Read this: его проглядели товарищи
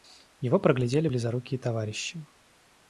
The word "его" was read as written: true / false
true